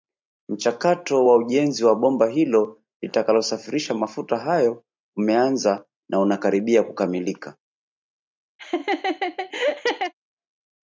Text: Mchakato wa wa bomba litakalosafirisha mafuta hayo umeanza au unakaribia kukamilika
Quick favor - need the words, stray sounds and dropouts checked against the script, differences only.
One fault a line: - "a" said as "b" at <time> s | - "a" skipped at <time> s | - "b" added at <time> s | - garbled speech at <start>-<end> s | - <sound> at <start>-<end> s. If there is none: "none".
- "ujenzi" added at 1.4 s
- "hilo" added at 2.3 s
- "au" said as "na" at 6.1 s
- laugh at 8.6-10.1 s